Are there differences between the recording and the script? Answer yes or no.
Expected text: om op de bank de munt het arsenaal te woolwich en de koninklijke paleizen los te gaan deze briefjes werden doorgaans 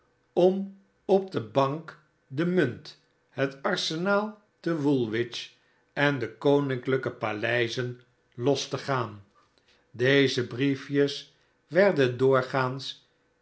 no